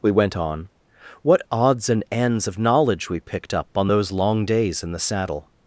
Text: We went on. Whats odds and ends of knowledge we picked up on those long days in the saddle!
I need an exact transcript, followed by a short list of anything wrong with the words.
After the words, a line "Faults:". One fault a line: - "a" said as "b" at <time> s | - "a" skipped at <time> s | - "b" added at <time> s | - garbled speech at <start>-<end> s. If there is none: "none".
We went on. What odds and ends of knowledge we picked up on those long days in the saddle!
Faults:
- "Whats" said as "What" at 1.2 s